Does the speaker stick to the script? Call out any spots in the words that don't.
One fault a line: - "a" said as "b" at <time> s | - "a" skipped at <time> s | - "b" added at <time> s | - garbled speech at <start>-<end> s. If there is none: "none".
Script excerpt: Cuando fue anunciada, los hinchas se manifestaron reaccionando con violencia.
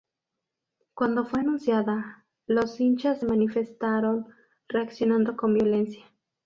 none